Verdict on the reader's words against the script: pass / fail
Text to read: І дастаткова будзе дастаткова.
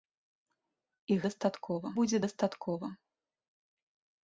pass